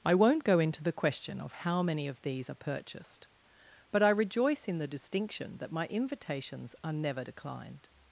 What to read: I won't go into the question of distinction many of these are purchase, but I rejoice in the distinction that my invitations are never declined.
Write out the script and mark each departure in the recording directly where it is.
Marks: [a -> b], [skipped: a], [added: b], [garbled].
I won't go into the question of [distinction -> how] many of these are [purchase, -> purchased] but I rejoice in the distinction that my invitations are never declined.